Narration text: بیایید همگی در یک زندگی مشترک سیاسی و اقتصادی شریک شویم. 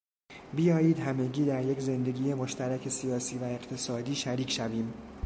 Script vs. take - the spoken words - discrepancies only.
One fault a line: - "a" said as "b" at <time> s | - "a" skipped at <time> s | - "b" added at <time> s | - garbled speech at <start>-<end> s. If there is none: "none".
none